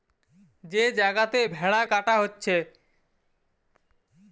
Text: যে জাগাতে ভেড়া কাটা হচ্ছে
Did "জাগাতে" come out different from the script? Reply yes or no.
no